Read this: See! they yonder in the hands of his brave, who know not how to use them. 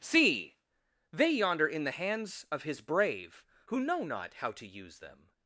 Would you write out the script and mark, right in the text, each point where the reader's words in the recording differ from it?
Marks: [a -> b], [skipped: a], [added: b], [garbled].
See! they yonder in the hands of his brave, who know not how to use them.